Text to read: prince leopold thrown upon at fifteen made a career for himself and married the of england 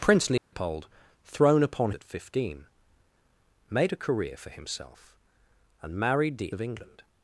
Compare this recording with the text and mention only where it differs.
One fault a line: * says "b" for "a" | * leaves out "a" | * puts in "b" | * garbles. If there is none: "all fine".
all fine